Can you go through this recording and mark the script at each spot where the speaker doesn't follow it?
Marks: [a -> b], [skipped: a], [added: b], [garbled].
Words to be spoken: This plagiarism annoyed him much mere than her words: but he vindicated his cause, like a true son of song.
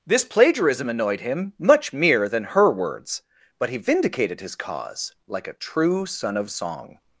This plagiarism annoyed him much mere than her words: but he vindicated his cause, like a true son of song.